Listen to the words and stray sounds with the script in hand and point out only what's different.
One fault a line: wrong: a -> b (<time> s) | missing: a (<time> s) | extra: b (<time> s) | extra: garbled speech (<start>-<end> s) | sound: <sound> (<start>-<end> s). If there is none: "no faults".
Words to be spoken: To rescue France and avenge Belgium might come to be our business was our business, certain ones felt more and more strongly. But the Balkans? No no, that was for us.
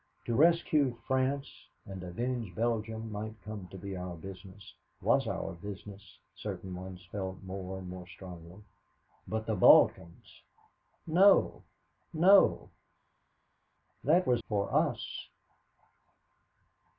no faults